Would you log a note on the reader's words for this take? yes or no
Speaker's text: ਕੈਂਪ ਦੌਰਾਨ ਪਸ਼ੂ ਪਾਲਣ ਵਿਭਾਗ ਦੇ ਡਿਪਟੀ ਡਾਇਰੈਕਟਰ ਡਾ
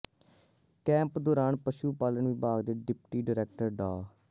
no